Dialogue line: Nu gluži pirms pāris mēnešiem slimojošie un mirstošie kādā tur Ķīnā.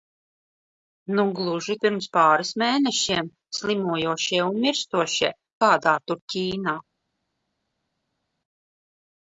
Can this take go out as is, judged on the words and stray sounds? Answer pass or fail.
pass